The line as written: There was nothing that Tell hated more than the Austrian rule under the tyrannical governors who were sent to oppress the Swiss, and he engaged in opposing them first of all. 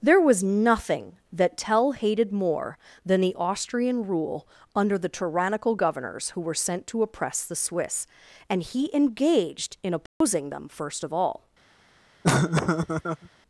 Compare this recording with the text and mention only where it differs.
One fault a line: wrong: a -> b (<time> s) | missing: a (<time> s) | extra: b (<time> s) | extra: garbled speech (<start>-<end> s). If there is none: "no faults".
no faults